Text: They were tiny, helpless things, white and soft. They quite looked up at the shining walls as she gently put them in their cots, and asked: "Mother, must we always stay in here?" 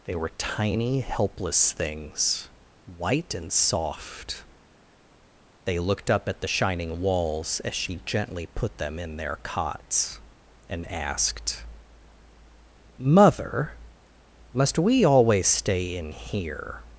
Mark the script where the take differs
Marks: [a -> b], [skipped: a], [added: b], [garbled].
They were tiny, helpless things, white and soft. They [skipped: quite] looked up at the shining walls as she gently put them in their cots, and asked: "Mother, must we always stay in here?"